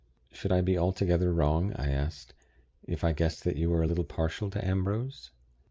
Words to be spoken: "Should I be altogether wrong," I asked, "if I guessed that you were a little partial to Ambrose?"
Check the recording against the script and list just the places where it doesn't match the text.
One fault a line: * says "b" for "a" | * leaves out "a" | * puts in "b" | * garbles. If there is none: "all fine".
all fine